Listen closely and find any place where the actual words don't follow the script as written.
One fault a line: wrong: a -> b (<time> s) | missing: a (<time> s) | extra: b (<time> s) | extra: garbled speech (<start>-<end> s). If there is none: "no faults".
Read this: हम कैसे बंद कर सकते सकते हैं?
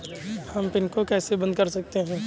extra: पिन को (0.7 s)
missing: सकते (2.0 s)